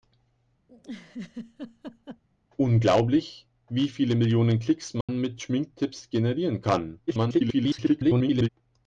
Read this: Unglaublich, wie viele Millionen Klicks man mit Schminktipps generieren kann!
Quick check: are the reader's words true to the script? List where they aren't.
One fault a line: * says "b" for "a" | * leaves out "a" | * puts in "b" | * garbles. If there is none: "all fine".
* garbles